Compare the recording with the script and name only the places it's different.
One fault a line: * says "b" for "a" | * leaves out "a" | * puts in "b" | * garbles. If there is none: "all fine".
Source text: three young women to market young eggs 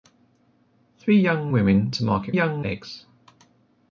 all fine